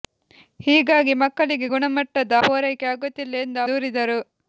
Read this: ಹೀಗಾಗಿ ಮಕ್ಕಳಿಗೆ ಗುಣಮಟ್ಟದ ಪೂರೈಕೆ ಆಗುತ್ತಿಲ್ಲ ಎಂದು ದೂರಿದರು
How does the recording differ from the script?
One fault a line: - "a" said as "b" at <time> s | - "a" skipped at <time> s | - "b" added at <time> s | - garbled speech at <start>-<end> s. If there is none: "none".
none